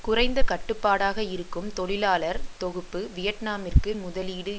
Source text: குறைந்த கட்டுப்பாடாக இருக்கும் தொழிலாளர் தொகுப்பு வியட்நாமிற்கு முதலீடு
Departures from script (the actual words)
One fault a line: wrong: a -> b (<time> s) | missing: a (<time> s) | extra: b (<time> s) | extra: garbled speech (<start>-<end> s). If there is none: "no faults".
no faults